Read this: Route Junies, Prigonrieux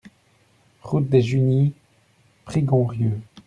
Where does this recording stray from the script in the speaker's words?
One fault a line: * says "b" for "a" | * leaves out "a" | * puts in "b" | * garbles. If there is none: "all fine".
* puts in "des"